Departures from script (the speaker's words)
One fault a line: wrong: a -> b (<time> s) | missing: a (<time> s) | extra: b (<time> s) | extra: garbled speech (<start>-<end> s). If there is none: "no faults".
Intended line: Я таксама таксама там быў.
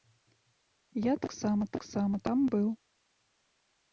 no faults